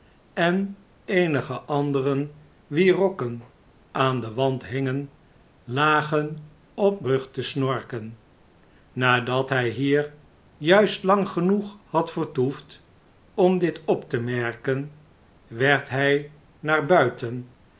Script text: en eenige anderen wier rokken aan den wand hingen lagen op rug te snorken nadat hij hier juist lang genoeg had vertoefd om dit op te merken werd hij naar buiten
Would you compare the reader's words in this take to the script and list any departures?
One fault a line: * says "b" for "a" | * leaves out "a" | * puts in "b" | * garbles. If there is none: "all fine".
all fine